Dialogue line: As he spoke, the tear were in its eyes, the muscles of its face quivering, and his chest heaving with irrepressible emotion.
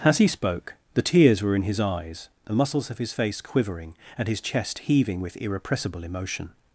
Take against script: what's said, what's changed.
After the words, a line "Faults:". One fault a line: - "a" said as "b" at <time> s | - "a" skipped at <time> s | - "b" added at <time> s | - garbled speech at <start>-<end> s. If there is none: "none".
As he spoke, the tears were in his eyes, the muscles of his face quivering, and his chest heaving with irrepressible emotion.
Faults:
- "tear" said as "tears" at 1.0 s
- "its" said as "his" at 1.6 s
- "its" said as "his" at 3.0 s